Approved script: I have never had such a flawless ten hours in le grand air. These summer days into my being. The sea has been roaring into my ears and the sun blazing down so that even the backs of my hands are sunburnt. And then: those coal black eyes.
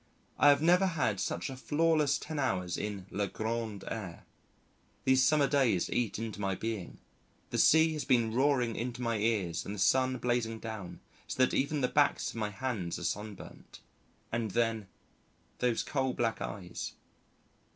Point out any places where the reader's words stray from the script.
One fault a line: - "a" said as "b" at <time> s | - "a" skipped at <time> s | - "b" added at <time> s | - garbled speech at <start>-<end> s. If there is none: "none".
- "eat" added at 5.9 s